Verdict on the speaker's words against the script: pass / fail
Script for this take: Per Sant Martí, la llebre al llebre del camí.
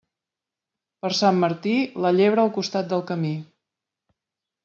fail